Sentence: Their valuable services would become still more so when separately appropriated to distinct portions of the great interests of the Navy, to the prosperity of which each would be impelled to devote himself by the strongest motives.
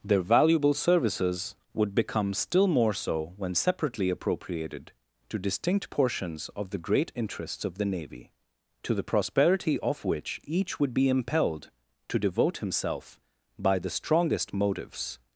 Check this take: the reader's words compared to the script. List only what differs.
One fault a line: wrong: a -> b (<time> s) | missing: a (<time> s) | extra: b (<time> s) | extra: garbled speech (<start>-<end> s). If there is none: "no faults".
no faults